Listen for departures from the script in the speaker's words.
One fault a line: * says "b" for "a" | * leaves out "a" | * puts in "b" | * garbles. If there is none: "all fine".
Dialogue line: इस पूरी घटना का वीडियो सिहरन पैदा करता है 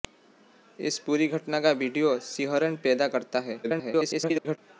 * garbles